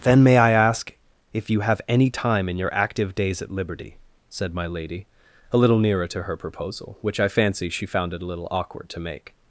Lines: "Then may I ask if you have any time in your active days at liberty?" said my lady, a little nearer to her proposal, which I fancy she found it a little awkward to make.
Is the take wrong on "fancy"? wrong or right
right